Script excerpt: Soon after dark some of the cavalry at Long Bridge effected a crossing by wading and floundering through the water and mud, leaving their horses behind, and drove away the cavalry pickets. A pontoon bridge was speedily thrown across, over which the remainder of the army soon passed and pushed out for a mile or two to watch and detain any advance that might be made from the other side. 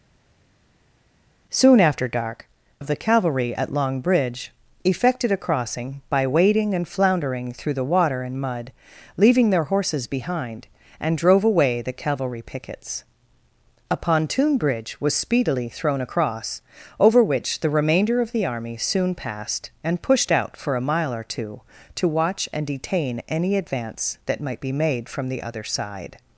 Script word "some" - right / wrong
wrong